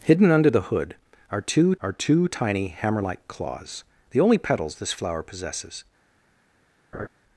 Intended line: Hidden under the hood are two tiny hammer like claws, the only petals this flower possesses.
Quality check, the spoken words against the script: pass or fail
fail